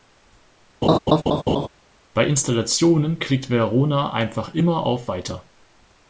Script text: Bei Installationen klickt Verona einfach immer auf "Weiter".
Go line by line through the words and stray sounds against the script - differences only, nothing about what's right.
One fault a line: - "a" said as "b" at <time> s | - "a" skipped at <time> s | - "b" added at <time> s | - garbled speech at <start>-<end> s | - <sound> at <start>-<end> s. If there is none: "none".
- laugh at 0.8-1.7 s